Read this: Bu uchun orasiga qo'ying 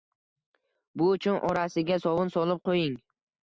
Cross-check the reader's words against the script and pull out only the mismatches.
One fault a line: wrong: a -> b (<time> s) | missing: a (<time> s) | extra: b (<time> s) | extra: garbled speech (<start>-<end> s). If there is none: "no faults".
extra: sovun solib (2.0 s)